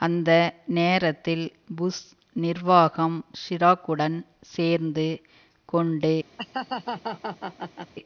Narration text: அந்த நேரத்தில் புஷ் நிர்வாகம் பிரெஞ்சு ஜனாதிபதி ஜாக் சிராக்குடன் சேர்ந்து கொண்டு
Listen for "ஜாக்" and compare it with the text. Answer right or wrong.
wrong